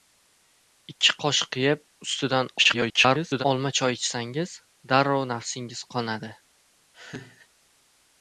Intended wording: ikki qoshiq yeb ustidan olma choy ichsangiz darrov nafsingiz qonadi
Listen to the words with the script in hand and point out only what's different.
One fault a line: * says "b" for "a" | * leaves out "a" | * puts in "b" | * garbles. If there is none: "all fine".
* garbles